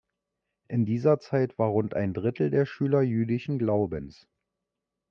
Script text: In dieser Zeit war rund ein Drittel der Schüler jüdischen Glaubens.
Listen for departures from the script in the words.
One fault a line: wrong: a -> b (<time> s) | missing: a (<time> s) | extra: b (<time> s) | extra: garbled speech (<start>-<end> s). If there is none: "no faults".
no faults